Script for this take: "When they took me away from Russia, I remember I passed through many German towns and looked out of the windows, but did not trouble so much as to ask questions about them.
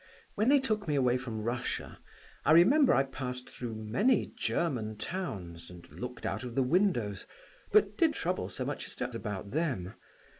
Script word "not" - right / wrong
wrong